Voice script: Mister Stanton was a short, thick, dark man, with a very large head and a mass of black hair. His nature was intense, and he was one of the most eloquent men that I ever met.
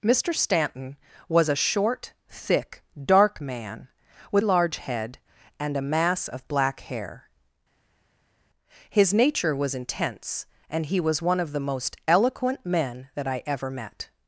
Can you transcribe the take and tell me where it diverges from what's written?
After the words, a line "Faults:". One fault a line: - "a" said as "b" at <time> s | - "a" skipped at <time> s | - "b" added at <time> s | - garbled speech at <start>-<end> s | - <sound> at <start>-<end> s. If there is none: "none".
Mister Stanton was a short, thick, dark man, with large head and a mass of black hair. His nature was intense, and he was one of the most eloquent men that I ever met.
Faults:
- "a very" skipped at 4.4 s